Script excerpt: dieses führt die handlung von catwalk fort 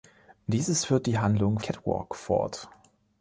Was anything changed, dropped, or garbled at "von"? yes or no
yes